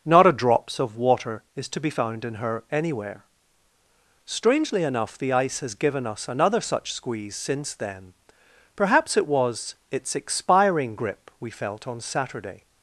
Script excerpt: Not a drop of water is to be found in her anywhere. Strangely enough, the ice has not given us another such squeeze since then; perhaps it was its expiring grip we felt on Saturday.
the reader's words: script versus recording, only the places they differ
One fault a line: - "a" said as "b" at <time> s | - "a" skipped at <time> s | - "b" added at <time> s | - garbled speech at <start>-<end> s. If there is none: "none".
- "drop" said as "drops" at 0.3 s
- "not" skipped at 5.8 s